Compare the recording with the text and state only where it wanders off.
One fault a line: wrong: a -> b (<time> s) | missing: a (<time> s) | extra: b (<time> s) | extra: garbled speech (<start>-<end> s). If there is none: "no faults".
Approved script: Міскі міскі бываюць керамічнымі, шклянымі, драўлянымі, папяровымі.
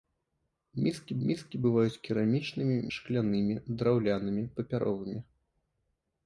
no faults